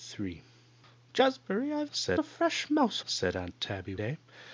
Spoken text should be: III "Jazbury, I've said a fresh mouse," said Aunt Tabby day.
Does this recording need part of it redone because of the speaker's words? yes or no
no